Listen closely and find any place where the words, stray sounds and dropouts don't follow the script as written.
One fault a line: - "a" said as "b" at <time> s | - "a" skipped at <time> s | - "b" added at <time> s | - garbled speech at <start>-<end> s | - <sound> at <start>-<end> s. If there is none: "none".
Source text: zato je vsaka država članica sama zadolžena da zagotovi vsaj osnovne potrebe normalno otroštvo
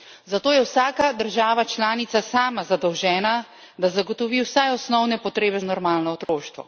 - dropout at 6.2-6.3 s